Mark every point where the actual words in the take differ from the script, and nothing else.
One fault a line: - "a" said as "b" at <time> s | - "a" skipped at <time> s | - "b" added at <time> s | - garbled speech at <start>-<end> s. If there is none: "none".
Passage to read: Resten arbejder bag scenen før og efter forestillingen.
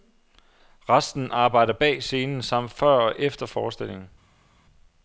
- "samt" added at 2.4 s